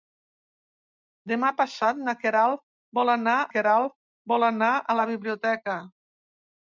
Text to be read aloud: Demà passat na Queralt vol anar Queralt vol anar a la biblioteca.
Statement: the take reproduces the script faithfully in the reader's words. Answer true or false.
true